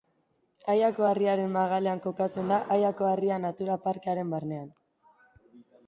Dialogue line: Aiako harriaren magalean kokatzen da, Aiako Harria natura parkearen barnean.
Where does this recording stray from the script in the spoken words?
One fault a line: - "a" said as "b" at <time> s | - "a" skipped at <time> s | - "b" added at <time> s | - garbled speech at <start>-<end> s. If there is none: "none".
none